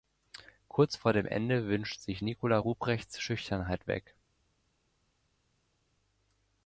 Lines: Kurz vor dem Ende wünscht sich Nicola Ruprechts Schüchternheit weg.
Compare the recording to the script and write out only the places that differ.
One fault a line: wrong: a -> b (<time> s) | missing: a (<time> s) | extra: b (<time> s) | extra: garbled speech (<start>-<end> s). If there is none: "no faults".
no faults